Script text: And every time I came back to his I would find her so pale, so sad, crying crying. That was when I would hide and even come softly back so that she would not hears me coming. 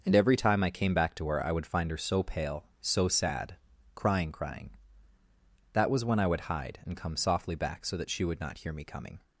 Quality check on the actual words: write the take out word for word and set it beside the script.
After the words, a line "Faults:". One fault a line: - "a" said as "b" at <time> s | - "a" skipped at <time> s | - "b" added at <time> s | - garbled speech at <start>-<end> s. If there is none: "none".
And every time I came back to her I would find her so pale, so sad, crying crying. That was when I would hide and come softly back so that she would not hear me coming.
Faults:
- "his" said as "her" at 1.3 s
- "even" skipped at 7.0 s
- "hears" said as "hear" at 8.6 s